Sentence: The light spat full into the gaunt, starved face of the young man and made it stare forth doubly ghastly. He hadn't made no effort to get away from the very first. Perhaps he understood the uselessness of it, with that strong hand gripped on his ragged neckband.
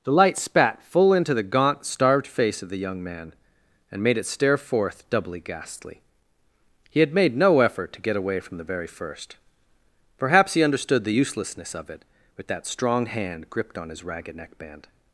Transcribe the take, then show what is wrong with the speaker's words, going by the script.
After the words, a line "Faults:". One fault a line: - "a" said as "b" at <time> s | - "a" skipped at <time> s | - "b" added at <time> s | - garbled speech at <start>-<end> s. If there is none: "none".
The light spat full into the gaunt, starved face of the young man and made it stare forth doubly ghastly. He had made no effort to get away from the very first. Perhaps he understood the uselessness of it, with that strong hand gripped on his ragged neckband.
Faults:
- "hadn't" said as "had" at 7.0 s